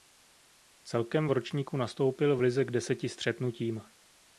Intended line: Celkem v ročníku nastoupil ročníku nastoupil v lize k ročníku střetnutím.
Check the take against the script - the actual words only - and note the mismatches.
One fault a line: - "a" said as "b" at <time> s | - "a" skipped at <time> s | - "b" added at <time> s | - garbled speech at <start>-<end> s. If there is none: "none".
- "ročníku nastoupil" skipped at 2.4 s
- "ročníku" said as "deseti" at 2.7 s